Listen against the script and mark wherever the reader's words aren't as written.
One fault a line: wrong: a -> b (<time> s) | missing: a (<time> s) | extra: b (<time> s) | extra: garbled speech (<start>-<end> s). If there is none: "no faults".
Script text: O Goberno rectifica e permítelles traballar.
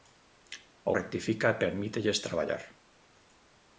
missing: Goberno (0.9 s)